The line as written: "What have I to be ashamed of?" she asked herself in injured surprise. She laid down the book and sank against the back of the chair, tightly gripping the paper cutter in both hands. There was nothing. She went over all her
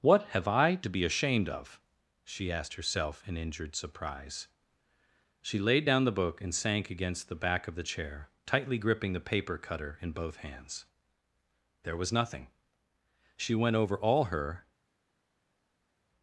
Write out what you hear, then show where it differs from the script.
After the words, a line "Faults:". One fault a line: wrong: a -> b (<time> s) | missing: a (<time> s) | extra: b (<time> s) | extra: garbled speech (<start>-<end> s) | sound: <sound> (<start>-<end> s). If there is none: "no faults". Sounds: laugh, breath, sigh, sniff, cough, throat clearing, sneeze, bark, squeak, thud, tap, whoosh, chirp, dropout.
"What have I to be ashamed of?" she asked herself in injured surprise. She laid down the book and sank against the back of the chair, tightly gripping the paper cutter in both hands. There was nothing. She went over all her
Faults:
no faults